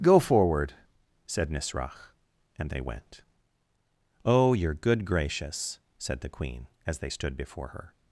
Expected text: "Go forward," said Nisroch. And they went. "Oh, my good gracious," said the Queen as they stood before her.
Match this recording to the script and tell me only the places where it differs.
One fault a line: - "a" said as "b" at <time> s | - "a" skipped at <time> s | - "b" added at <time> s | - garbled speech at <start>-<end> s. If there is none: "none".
- "my" said as "your" at 4.5 s